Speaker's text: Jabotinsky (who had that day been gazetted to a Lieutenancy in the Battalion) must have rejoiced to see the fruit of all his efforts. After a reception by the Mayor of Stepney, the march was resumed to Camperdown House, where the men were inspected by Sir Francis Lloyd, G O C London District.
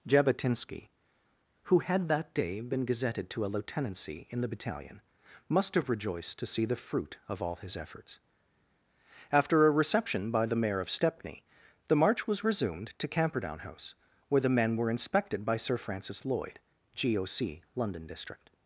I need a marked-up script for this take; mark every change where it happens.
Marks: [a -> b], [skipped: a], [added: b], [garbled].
Jabotinsky (who had that day been gazetted to a Lieutenancy in the Battalion) must have rejoiced to see the fruit of all his efforts. After a reception by the Mayor of Stepney, the march was resumed to Camperdown House, where the men were inspected by Sir Francis Lloyd, G O C London District.